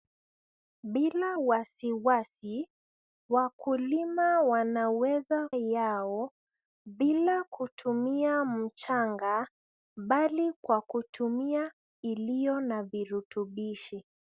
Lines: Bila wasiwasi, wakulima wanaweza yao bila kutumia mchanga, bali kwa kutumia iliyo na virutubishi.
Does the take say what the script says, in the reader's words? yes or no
yes